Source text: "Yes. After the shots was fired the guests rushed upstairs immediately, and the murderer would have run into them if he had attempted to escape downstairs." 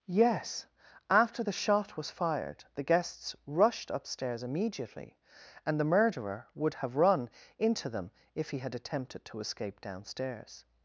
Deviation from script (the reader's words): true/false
true